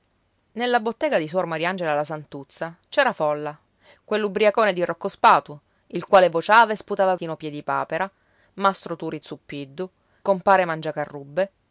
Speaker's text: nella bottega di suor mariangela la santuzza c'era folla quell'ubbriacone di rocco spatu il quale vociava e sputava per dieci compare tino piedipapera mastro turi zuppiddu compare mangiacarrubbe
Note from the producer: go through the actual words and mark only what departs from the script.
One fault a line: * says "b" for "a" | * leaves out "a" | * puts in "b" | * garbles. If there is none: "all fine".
* leaves out "per dieci compare"